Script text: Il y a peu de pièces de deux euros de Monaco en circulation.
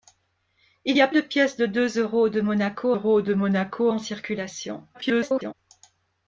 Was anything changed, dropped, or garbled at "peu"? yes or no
yes